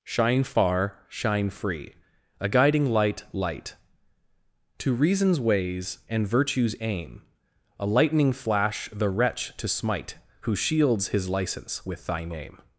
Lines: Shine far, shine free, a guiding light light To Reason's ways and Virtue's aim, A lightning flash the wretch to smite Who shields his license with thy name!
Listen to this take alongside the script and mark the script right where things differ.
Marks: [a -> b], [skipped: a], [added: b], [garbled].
Shine far, shine free, a guiding light light To Reason's ways and Virtue's aim, A lightning flash the wretch to smite Who shields his license with thy name!